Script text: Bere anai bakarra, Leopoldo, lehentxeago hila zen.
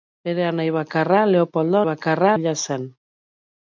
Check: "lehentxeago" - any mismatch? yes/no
yes